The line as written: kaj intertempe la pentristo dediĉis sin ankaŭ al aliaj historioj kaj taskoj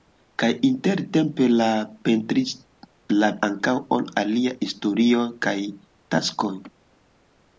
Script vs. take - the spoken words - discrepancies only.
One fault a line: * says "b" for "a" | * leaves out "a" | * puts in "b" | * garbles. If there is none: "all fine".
* leaves out "pentristo dediĉis sin"